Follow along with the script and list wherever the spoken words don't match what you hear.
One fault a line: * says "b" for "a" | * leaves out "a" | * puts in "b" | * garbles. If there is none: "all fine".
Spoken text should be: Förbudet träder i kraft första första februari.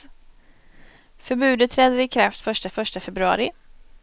all fine